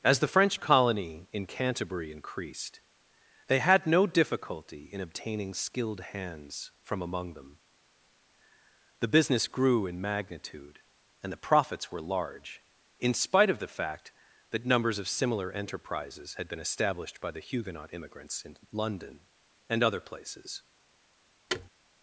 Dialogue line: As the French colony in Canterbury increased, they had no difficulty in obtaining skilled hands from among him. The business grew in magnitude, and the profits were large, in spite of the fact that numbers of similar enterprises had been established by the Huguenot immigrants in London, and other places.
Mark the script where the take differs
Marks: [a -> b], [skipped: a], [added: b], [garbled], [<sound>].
As the French colony in Canterbury increased, they had no difficulty in obtaining skilled hands from among [him. -> them] The business grew in magnitude, and the profits were large, in spite of the fact that numbers of similar enterprises had been established by the Huguenot immigrants in London, and other places. [thud]